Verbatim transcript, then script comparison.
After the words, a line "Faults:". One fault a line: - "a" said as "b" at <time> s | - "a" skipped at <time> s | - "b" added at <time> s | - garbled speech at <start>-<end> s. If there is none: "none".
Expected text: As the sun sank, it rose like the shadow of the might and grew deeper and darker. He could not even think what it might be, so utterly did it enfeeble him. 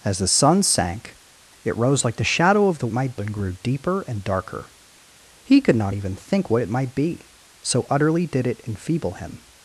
As the sun sank, it rose like the shadow of the might and grew deeper and darker. He could not even think what it might be, so utterly did it enfeeble him.
Faults:
none